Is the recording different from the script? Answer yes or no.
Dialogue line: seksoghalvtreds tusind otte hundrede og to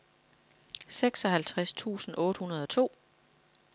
no